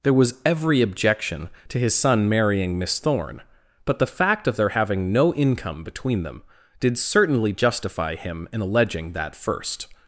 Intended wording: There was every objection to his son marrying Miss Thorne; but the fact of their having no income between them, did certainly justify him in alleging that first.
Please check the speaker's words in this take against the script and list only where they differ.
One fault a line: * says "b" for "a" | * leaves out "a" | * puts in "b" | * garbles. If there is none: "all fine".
all fine